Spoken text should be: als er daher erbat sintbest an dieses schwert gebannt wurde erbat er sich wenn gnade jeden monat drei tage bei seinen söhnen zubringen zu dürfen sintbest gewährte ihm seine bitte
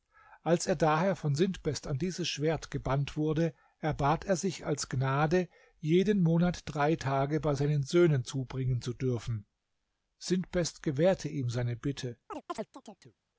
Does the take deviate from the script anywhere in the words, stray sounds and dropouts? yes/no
yes